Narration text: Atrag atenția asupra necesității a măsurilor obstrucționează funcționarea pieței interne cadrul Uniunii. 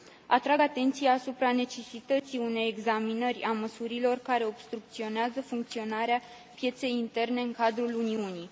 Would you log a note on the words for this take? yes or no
yes